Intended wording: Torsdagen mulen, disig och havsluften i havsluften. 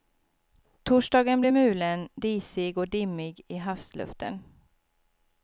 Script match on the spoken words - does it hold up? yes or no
no